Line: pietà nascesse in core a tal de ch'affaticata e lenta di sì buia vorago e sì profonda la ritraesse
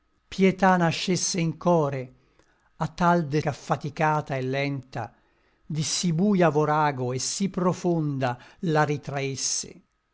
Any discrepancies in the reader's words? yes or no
no